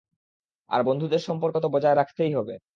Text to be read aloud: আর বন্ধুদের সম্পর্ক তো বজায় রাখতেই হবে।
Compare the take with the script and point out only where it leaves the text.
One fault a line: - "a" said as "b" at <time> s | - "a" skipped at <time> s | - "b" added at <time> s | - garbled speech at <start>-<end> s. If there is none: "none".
none